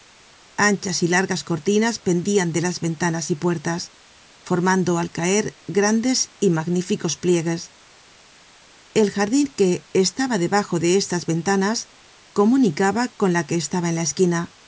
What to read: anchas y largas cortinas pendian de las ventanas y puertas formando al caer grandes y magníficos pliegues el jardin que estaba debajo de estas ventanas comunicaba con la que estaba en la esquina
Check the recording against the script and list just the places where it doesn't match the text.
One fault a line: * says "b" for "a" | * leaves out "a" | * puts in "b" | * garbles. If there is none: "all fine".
all fine